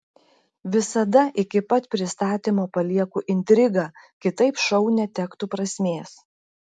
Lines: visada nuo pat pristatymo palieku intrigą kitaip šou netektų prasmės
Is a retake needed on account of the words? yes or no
yes